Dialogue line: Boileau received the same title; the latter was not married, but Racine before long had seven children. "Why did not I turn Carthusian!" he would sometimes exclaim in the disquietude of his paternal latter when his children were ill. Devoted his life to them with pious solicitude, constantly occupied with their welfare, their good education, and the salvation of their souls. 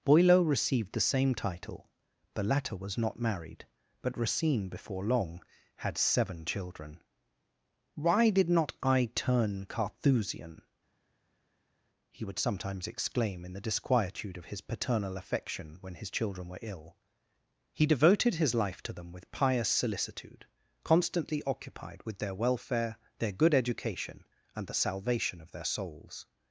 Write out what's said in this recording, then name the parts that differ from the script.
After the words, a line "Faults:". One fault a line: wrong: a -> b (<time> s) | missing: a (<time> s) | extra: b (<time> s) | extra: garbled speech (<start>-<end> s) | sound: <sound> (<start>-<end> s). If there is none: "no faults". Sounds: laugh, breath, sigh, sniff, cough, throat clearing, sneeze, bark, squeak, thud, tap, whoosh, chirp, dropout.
Boileau received the same title; the latter was not married, but Racine before long had seven children. "Why did not I turn Carthusian!" he would sometimes exclaim in the disquietude of his paternal affection when his children were ill. He devoted his life to them with pious solicitude, constantly occupied with their welfare, their good education, and the salvation of their souls.
Faults:
wrong: latter -> affection (15.2 s)
extra: He (17.7 s)